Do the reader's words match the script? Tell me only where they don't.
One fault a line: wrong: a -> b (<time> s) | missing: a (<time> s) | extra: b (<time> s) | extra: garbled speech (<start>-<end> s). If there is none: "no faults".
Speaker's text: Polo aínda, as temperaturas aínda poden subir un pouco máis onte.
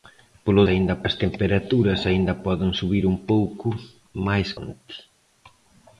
no faults